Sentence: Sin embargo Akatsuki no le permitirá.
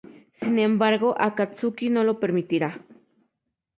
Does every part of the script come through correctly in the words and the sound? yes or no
no